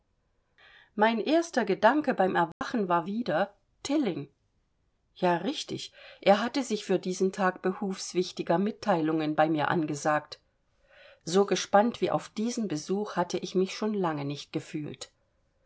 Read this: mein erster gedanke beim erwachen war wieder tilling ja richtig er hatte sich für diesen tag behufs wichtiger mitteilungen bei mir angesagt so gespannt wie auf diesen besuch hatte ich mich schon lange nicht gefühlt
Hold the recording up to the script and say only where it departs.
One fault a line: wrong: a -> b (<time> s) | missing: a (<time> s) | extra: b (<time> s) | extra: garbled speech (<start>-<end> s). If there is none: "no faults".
no faults